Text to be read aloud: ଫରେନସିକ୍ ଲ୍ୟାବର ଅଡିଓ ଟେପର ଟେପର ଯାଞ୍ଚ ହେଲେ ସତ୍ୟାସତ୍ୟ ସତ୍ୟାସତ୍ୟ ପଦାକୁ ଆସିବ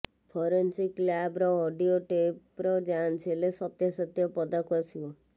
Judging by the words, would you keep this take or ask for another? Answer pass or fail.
fail